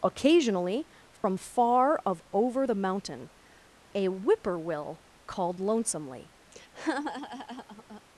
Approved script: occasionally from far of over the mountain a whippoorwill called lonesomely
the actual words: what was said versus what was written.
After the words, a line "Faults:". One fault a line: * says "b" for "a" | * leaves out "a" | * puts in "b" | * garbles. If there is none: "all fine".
occasionally from far of over the mountain a whippoorwill called lonesomely
Faults:
all fine